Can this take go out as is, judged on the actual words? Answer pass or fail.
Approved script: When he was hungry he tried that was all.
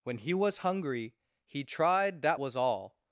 pass